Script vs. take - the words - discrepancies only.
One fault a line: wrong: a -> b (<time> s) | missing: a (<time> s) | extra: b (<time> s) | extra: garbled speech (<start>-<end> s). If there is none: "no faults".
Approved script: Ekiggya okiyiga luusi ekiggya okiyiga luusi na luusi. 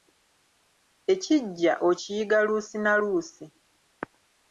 missing: ekiggya okiyiga luusi (2.8 s)